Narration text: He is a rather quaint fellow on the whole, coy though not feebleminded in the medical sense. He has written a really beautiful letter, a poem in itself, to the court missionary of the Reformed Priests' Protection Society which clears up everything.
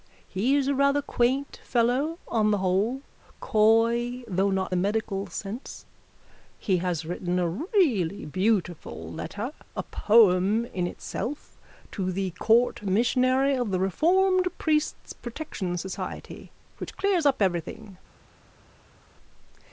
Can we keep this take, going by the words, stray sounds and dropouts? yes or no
no